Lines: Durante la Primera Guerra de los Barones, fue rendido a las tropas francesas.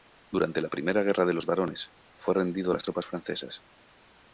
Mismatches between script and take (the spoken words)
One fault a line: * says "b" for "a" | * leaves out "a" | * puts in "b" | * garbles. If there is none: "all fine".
all fine